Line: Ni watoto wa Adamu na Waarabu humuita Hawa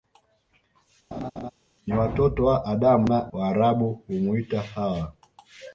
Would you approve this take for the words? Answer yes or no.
yes